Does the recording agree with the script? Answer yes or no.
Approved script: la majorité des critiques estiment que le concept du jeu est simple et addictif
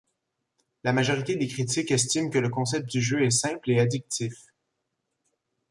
yes